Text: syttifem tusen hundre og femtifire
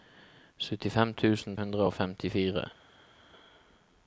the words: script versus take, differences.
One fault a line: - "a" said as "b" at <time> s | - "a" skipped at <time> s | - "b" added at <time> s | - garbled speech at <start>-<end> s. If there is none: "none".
none